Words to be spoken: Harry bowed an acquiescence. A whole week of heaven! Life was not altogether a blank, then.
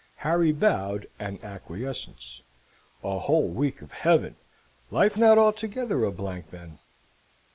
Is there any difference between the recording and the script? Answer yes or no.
yes